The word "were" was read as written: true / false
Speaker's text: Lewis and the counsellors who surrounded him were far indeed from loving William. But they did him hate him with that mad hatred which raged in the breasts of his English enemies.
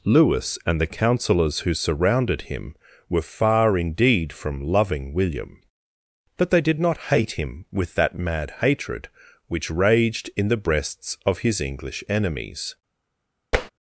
true